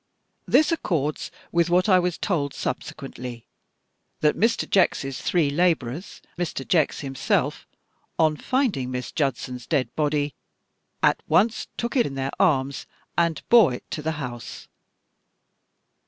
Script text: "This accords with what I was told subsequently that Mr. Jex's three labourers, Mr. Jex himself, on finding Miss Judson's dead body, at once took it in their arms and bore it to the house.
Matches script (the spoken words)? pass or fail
pass